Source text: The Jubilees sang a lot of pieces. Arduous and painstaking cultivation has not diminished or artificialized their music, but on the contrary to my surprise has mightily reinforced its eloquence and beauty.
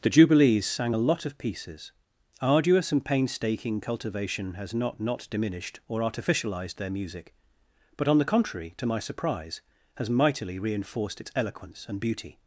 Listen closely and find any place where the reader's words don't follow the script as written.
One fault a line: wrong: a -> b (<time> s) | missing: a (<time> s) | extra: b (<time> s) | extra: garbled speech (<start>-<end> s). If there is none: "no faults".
extra: not (5.0 s)